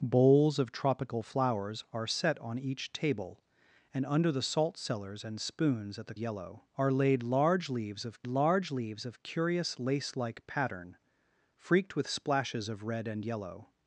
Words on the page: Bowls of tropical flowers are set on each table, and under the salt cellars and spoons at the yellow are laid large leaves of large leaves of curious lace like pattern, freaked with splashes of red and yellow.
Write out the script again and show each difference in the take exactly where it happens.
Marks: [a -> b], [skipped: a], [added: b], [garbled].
Bowls of tropical flowers are set on each table, and under the salt cellars and spoons at the yellow are laid large leaves of large leaves of curious lace like pattern, freaked with splashes of red and yellow.